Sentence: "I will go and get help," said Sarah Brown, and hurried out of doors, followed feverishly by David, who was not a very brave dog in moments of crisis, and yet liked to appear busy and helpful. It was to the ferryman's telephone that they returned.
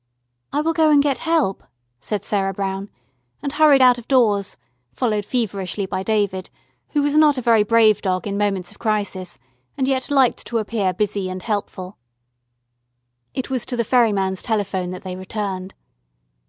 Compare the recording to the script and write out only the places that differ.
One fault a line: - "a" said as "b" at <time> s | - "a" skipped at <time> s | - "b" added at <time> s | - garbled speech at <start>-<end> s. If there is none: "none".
none